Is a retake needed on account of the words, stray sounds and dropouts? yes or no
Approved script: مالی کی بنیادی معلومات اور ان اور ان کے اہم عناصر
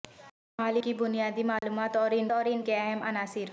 yes